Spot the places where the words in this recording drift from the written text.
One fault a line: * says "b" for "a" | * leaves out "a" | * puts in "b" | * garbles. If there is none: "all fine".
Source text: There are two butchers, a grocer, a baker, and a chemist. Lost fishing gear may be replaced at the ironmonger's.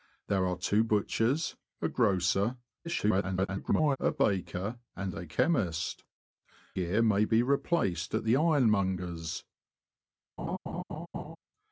* garbles
* leaves out "Lost fishing"